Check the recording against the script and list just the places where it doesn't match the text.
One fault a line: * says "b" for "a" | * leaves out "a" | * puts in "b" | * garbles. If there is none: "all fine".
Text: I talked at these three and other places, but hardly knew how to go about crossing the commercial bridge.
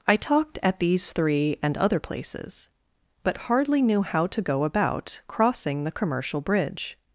all fine